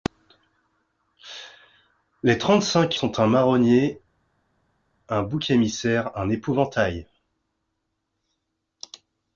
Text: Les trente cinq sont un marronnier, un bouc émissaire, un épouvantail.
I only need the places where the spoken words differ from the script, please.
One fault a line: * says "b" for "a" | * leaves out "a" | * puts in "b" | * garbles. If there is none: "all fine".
all fine